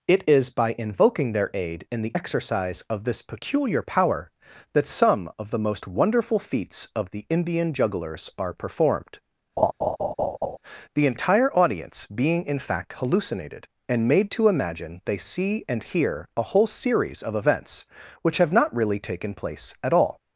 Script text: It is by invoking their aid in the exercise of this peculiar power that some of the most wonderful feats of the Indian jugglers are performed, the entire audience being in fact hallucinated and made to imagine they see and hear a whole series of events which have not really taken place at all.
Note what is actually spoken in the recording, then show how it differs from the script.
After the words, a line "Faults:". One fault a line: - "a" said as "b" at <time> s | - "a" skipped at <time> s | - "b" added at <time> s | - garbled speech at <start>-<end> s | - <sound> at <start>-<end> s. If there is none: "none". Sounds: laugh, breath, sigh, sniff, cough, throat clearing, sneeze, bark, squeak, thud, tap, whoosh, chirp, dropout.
It is by invoking their aid in the exercise of this peculiar power that some of the most wonderful feats of the Indian jugglers are performed, the entire audience being in fact hallucinated and made to imagine they see and hear a whole series of events which have not really taken place at all.
Faults:
- laugh at 9.6-10.6 s